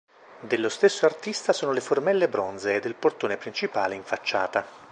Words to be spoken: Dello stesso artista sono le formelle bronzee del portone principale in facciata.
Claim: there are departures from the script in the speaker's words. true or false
false